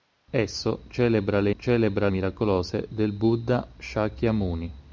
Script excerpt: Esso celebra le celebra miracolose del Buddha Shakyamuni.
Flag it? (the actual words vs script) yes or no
no